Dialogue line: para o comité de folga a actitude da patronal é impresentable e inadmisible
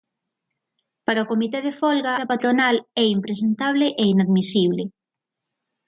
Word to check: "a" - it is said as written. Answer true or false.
false